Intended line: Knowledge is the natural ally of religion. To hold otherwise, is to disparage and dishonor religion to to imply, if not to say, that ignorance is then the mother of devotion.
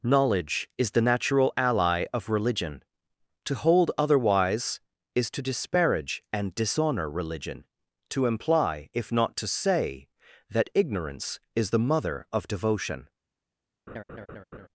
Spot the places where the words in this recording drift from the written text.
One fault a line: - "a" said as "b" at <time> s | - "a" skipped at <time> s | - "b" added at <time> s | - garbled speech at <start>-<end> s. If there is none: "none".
- "to" skipped at 8.2 s
- "then" skipped at 11.7 s